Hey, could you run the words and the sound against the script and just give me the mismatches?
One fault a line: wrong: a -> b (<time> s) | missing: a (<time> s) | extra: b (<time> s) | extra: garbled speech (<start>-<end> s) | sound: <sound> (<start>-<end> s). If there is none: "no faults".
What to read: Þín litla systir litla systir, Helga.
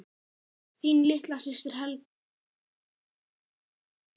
missing: litla systir (1.8 s)